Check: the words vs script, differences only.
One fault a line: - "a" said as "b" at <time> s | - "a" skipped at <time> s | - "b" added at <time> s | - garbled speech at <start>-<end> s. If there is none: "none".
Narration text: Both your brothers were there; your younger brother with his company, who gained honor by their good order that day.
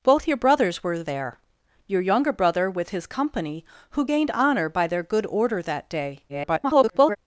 - garbled speech at 6.3-7.2 s